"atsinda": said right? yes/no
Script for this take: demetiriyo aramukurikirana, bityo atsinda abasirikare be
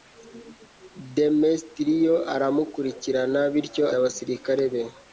no